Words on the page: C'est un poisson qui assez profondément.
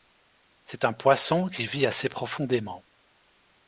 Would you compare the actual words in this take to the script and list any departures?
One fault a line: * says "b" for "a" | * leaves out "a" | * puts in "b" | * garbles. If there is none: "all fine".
* puts in "vit"